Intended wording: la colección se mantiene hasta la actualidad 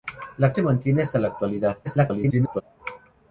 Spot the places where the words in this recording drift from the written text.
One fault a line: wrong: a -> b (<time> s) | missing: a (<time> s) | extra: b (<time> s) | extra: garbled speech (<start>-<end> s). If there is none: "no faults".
missing: colección (0.6 s)
extra: garbled speech (1.8-2.6 s)